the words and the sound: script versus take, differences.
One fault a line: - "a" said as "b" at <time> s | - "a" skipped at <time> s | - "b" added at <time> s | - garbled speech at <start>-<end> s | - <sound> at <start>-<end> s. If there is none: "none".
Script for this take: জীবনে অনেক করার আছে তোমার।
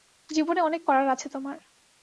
none